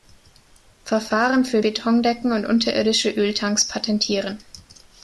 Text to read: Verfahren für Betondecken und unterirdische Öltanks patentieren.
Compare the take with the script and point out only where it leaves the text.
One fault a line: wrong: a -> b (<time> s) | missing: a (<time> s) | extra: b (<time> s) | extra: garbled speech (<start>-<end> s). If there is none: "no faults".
no faults